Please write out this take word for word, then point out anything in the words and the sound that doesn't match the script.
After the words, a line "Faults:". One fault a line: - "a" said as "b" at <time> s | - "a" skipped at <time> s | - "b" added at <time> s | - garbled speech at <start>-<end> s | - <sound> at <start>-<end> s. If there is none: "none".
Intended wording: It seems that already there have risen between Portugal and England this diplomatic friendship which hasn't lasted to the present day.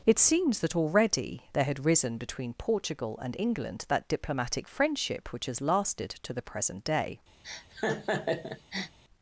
It seems that already there had risen between Portugal and England that diplomatic friendship which has lasted to the present day.
Faults:
- "have" said as "had" at 1.6 s
- "this" said as "that" at 3.9 s
- "hasn't" said as "has" at 5.5 s
- laugh at 7.4-9.0 s